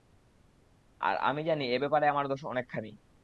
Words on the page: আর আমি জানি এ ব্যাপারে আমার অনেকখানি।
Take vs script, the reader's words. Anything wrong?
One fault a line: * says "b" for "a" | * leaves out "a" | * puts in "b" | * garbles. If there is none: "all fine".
* puts in "দোষ"